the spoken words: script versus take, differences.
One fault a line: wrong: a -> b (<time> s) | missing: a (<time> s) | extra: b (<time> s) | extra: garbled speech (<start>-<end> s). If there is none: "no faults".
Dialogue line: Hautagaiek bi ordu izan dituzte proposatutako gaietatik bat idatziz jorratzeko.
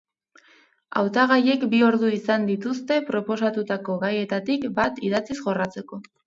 no faults